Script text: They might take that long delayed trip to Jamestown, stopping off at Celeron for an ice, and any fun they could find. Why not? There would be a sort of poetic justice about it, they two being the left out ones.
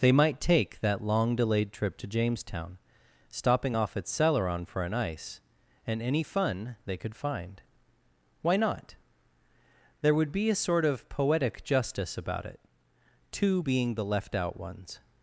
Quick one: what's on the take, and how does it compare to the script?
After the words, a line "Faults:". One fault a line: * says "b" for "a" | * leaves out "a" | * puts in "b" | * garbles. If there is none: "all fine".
They might take that long delayed trip to Jamestown, stopping off at Celeron for an ice, and any fun they could find. Why not? There would be a sort of poetic justice about it, two being the left out ones.
Faults:
* leaves out "they"